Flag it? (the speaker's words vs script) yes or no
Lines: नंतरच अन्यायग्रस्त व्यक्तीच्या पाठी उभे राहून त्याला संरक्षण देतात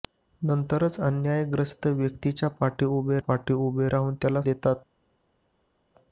yes